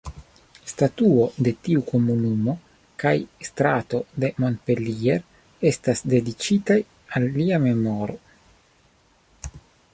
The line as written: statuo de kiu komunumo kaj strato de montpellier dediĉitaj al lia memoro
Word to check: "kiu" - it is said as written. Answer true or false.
false